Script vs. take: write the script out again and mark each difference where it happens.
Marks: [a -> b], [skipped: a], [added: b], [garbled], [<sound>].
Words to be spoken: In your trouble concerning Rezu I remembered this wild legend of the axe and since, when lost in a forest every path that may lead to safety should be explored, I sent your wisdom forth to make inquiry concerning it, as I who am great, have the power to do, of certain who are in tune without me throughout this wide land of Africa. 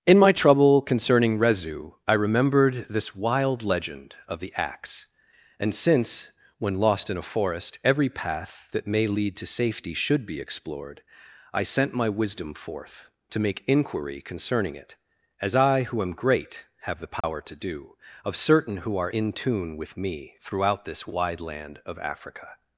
In [your -> my] trouble concerning Rezu I remembered this wild legend of the axe and since, when lost in a forest every path that may lead to safety should be explored, I sent [your -> my] wisdom forth to make inquiry concerning it, as I who am great, have the power [dropout] to do, of certain who are in tune [without -> with] me throughout this wide land of Africa.